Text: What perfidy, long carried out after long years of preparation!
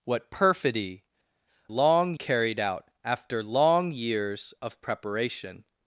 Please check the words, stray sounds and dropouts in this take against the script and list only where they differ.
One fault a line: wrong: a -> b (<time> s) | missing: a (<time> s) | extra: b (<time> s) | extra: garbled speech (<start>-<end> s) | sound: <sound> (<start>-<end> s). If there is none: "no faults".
no faults